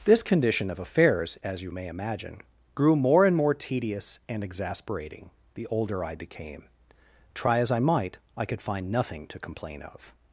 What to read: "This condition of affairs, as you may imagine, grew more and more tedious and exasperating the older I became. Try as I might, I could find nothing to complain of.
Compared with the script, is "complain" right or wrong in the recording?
right